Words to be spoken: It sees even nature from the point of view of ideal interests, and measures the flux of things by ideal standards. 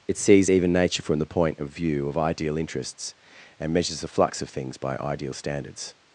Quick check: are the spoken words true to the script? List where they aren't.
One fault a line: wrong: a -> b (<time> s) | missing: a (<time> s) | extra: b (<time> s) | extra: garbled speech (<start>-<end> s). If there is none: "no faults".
no faults